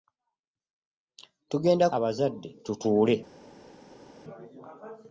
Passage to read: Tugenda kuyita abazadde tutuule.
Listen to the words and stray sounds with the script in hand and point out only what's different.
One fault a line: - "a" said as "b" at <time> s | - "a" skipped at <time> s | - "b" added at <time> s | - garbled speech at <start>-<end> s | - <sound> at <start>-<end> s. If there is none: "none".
- "kuyita" skipped at 1.9 s